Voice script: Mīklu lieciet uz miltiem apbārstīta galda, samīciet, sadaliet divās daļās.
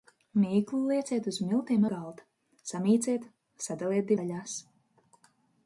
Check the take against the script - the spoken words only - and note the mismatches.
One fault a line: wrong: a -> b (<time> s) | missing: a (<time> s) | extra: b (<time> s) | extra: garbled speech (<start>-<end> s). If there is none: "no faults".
missing: apbārstīta (1.9 s)
missing: divās (4.1 s)